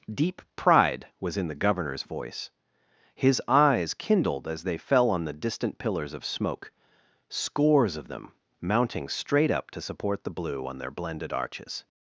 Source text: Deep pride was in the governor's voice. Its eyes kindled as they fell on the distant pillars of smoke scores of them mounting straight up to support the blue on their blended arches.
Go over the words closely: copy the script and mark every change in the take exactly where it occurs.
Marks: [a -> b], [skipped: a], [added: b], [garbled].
Deep pride was in the governor's voice. [Its -> His] eyes kindled as they fell on the distant pillars of smoke scores of them mounting straight up to support the blue on their blended arches.